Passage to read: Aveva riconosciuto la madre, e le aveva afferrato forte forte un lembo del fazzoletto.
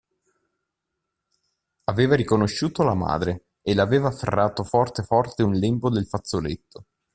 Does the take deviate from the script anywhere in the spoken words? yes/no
no